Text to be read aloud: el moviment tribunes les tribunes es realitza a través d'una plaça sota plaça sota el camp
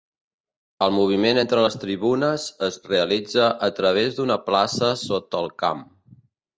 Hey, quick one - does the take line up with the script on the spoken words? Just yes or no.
no